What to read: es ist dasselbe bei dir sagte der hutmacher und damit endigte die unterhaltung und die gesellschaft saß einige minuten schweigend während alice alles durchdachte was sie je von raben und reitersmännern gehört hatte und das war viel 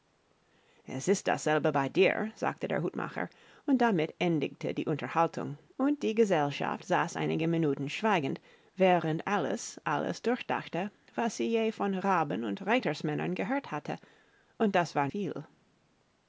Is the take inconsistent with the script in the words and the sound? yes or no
no